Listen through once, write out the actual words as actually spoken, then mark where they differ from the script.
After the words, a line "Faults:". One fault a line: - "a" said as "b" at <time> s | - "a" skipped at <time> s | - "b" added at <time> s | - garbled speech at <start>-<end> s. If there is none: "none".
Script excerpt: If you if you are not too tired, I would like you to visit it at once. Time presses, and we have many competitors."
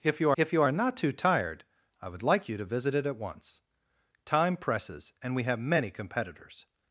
If you if you are not too tired, I would like you to visit it at once. Time presses, and we have many competitors."
Faults:
none